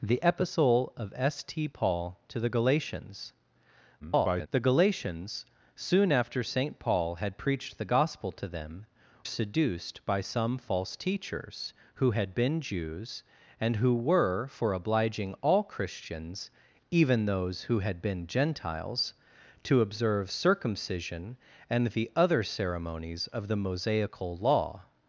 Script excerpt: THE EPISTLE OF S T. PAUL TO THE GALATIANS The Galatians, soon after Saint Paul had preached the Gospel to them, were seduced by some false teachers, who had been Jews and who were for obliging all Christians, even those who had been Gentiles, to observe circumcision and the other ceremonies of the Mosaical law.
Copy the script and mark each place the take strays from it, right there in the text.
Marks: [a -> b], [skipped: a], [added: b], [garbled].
THE EPISTLE OF S T. PAUL TO THE GALATIANS [garbled] The Galatians, soon after Saint Paul had preached the Gospel to them, [skipped: were] seduced by some false teachers, who had been Jews and who were for obliging all Christians, even those who had been Gentiles, to observe circumcision and the other ceremonies of the Mosaical law.